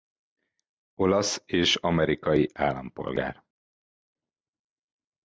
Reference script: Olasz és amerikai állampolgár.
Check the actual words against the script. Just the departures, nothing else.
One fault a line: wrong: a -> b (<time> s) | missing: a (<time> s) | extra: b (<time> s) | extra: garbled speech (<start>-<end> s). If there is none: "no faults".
no faults